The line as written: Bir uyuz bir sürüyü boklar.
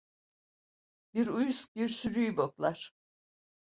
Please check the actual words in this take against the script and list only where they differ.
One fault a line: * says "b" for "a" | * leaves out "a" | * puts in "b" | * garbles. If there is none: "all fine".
all fine